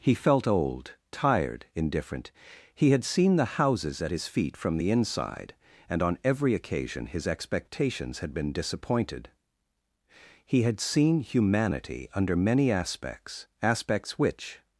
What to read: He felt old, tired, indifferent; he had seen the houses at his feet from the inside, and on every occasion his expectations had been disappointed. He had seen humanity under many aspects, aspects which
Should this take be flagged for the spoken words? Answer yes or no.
no